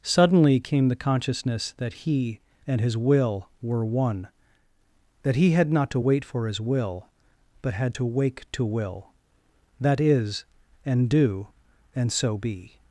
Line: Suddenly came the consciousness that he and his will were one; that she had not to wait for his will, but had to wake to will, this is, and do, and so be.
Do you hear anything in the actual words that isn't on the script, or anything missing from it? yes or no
yes